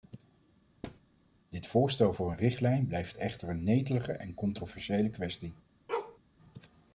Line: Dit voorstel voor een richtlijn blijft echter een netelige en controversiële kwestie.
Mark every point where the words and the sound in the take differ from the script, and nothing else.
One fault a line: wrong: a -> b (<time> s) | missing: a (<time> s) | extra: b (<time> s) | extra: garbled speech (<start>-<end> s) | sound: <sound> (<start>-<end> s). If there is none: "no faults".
sound: thud (0.8-1.0 s)
sound: bark (5.9-6.2 s)